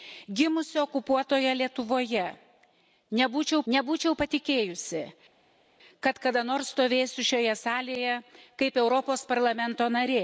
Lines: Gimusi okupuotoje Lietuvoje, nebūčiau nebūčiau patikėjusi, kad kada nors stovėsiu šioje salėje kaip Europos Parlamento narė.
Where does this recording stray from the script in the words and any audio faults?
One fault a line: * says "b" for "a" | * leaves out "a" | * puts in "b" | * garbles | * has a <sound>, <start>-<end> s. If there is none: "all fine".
all fine